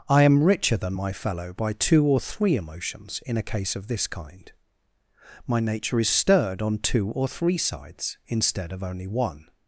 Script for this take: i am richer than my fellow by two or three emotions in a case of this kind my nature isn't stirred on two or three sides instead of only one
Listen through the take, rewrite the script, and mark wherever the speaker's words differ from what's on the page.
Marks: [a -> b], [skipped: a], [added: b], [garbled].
i am richer than my fellow by two or three emotions in a case of this kind my nature [isn't -> is] stirred on two or three sides instead of only one